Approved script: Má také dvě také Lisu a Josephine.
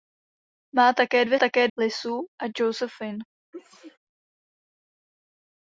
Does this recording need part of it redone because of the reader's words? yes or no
no